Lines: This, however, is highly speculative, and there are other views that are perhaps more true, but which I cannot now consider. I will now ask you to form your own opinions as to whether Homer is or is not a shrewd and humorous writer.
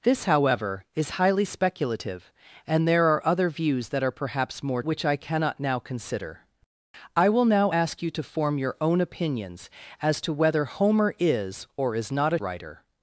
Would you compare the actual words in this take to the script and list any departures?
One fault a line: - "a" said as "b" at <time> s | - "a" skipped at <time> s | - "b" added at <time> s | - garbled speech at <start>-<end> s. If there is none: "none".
- "true but" skipped at 4.8 s
- "shrewd and humorous" skipped at 12.4 s